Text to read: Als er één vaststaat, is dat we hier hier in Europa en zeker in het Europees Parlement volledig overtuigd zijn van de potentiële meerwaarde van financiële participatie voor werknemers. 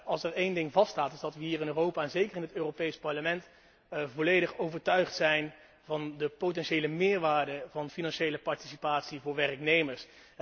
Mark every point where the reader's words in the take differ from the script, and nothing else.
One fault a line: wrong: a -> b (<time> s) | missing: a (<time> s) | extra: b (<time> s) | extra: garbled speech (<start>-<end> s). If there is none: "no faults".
extra: ding (0.5 s)
missing: hier (1.6 s)